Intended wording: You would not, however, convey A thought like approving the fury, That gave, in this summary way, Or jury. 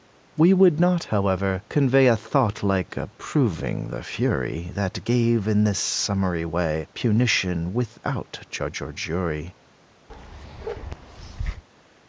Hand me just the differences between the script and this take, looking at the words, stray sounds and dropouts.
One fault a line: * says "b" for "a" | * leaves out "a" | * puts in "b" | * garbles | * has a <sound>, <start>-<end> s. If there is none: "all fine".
* says "We" for "You"
* puts in "Punition without judge"
* has a bark, 10.1-11.6 s